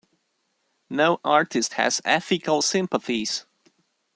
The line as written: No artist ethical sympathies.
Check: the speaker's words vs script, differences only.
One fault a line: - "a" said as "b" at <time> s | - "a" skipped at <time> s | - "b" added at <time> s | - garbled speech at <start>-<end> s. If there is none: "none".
- "has" added at 1.7 s